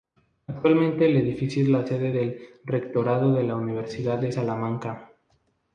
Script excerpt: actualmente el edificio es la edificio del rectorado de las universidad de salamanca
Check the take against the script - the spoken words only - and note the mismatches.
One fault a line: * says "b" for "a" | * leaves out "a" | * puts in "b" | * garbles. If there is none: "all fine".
* says "sede" for "edificio"
* says "la" for "las"